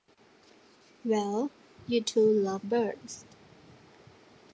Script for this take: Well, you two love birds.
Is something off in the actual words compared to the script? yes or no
no